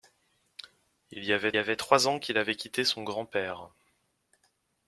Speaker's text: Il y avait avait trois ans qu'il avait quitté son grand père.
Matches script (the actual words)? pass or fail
pass